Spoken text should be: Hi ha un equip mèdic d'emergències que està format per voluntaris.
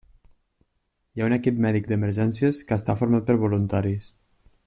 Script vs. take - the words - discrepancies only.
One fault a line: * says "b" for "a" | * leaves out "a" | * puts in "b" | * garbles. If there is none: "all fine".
all fine